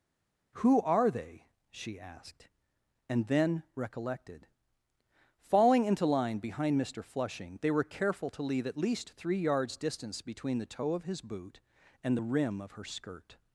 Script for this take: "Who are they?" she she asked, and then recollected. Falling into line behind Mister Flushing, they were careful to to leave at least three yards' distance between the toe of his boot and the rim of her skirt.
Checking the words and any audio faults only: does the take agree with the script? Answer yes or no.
no